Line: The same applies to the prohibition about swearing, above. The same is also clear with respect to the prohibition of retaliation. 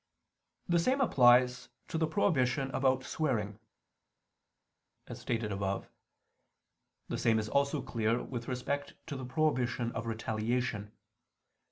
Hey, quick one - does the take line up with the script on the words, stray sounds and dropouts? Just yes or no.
no